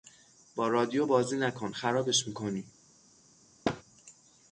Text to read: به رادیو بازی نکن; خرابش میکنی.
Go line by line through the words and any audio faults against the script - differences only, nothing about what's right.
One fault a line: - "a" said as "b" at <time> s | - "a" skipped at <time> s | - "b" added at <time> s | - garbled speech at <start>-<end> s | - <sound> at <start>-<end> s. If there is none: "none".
- "به" said as "با" at 0.6 s
- thud at 3.6-3.8 s